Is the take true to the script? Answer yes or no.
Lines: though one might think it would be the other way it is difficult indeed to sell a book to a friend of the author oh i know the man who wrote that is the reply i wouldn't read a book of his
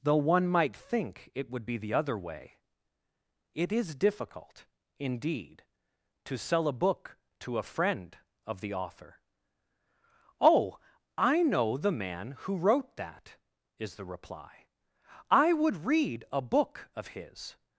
no